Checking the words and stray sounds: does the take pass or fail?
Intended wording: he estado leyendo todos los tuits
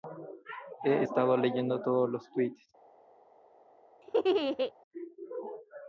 fail